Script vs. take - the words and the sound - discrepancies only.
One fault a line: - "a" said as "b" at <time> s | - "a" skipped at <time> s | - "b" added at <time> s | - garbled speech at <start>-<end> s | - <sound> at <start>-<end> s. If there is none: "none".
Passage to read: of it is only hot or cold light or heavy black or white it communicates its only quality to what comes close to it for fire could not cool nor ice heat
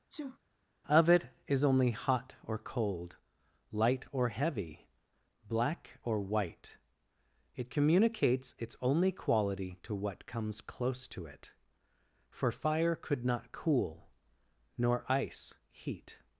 - sneeze at 0.1-0.4 s